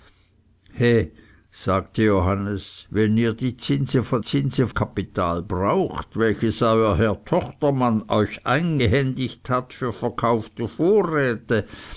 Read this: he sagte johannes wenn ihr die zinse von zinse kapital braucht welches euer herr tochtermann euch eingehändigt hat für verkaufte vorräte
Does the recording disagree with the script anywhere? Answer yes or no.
no